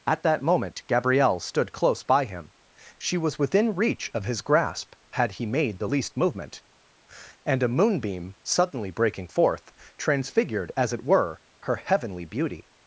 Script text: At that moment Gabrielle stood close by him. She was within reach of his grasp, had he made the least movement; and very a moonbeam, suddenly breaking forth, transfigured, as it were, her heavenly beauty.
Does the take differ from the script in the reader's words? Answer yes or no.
yes